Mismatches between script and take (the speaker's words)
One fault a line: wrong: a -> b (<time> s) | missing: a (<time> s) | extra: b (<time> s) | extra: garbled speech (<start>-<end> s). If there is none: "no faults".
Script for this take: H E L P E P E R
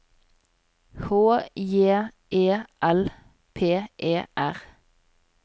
extra: J (1.6 s)
missing: P E (4.2 s)